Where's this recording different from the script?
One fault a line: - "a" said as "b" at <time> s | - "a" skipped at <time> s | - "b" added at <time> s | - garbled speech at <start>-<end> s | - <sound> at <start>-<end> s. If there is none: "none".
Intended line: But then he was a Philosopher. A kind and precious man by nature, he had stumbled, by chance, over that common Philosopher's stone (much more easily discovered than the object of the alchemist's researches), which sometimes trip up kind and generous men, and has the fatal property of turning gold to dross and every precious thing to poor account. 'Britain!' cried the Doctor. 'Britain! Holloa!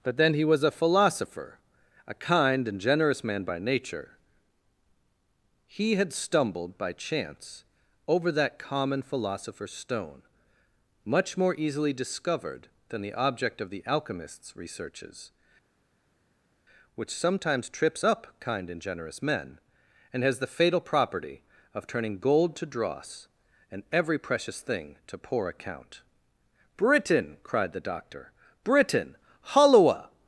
- "precious" said as "generous" at 2.8 s
- "trip" said as "trips" at 17.7 s